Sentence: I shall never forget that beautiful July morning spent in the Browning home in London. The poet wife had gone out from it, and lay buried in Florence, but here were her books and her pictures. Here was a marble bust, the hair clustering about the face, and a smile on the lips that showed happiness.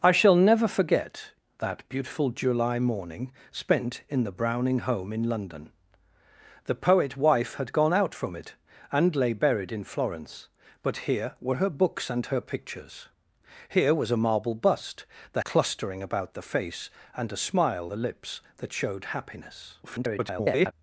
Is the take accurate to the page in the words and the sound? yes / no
no